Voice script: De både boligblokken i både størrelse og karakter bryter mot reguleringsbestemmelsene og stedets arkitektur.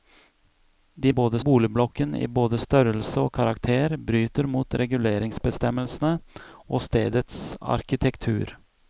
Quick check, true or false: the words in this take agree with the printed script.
true